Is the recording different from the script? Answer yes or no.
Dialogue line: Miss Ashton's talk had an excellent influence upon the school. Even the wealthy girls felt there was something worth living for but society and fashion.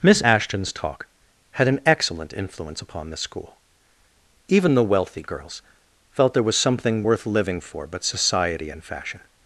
no